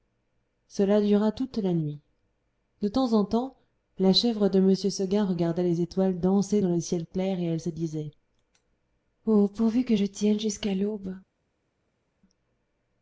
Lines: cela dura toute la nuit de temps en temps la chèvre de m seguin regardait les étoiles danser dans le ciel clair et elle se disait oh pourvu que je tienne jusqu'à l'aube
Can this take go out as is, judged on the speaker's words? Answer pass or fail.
pass